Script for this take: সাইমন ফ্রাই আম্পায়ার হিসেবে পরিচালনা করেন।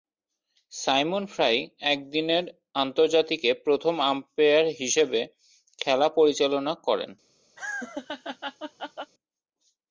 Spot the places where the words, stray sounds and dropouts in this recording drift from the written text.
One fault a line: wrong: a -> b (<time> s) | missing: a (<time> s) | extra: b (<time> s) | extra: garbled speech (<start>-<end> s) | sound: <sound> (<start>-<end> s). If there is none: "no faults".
extra: একদিনের আন্তর্জাতিকে প্রথম (1.9 s)
extra: খেলা (5.8 s)
sound: laugh (7.6-9.1 s)